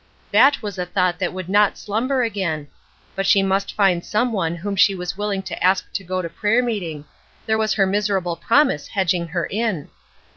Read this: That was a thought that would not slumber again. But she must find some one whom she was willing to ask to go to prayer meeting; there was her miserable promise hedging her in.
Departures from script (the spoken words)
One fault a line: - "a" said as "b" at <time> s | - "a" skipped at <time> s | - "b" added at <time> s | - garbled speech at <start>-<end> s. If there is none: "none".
none